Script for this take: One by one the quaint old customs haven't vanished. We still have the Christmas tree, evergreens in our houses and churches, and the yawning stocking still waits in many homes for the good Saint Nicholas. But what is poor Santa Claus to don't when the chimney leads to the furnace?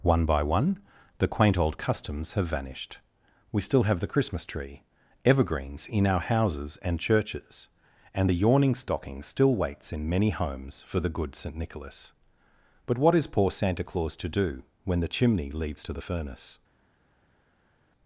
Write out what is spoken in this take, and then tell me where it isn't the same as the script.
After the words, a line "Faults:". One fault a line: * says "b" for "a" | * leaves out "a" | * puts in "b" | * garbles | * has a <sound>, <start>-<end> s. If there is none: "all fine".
One by one the quaint old customs have vanished. We still have the Christmas tree, evergreens in our houses and churches, and the yawning stocking still waits in many homes for the good Saint Nicholas. But what is poor Santa Claus to do when the chimney leads to the furnace?
Faults:
* says "have" for "haven't"
* says "do" for "don't"